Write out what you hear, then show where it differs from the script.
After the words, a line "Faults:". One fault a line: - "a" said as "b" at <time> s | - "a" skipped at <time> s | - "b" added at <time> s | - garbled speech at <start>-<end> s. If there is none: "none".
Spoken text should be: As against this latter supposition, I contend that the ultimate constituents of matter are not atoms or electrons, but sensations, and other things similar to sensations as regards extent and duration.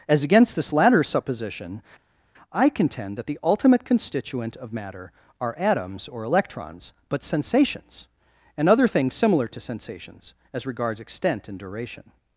As against this latter supposition, I contend that the ultimate constituent of matter are atoms or electrons, but sensations, and other things similar to sensations as regards extent and duration.
Faults:
- "constituents" said as "constituent" at 3.8 s
- "not" skipped at 5.6 s